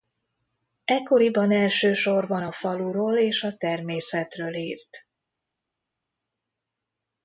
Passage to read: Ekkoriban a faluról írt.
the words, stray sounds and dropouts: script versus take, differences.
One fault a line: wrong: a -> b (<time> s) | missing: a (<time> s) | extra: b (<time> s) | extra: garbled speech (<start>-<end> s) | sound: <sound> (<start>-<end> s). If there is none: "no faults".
extra: elsősorban (1.5 s)
extra: és a természetről (3.2 s)